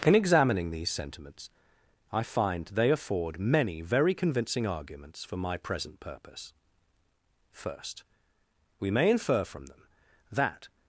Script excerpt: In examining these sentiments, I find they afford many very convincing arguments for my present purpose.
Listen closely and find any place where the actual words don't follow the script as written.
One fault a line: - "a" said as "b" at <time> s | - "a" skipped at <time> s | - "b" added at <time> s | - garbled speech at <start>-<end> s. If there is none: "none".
- "First We may infer from them that" added at 7.5 s